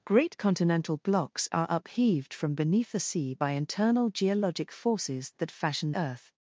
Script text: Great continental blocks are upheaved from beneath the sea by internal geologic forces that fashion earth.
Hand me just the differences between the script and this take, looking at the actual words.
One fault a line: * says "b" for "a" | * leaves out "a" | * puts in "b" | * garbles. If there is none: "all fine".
all fine